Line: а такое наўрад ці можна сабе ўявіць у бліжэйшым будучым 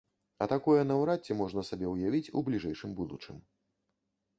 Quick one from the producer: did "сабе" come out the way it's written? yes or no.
yes